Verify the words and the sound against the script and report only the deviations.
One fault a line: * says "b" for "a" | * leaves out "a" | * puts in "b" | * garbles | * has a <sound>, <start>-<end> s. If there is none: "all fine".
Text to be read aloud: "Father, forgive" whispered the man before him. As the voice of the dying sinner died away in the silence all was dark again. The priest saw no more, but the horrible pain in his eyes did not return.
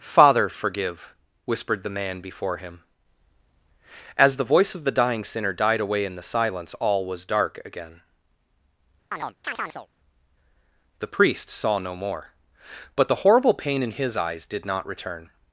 * has a chirp, 9.1-9.9 s